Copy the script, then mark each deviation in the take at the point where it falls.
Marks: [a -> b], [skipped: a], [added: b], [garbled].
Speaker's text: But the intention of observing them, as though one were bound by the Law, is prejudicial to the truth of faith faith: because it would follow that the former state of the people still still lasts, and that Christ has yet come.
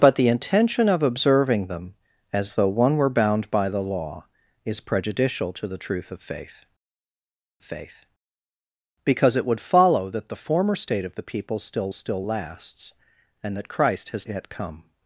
But the intention of observing them, as though one were bound by the Law, is prejudicial to the truth of faith faith: because it would follow that the former state of the people still still lasts, and that Christ has yet come.